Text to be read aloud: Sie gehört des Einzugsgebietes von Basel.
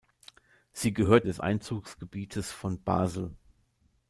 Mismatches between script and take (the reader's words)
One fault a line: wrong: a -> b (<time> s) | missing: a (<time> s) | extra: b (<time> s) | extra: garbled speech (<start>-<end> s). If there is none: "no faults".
no faults